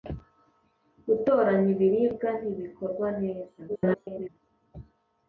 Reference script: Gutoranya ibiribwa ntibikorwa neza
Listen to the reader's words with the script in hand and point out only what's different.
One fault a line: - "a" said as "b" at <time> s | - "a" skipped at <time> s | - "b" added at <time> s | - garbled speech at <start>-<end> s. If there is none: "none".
- garbled speech at 3.7-4.3 s